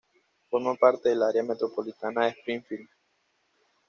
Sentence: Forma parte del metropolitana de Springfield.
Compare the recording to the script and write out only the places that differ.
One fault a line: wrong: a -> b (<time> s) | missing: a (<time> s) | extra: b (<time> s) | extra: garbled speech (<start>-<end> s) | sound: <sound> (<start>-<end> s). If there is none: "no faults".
extra: área (1.2 s)